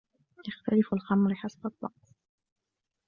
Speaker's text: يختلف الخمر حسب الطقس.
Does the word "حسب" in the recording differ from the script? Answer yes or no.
no